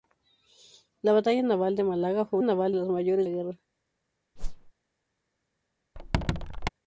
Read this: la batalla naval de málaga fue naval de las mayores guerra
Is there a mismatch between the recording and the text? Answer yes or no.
no